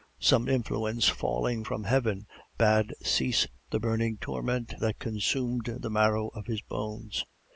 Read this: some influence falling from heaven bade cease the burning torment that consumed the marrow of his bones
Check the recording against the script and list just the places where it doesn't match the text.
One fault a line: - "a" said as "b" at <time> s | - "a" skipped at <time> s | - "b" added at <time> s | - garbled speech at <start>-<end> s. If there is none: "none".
none